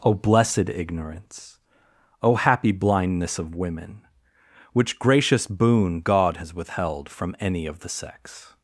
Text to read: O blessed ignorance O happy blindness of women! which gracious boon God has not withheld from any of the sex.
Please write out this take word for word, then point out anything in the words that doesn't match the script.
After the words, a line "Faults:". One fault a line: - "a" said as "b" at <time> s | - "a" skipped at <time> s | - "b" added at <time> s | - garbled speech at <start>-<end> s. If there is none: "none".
O blessed ignorance O happy blindness of women! which gracious boon God has withheld from any of the sex.
Faults:
- "not" skipped at 6.5 s